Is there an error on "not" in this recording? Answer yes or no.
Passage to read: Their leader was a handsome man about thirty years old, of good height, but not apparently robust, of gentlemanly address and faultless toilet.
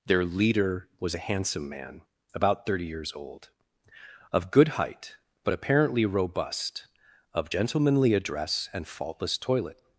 yes